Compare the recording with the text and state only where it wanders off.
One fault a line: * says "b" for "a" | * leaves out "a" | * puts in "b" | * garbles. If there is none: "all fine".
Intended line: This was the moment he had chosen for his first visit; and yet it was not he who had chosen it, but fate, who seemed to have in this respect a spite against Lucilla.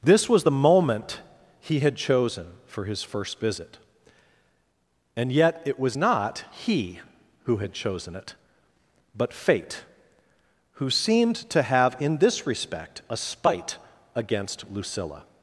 all fine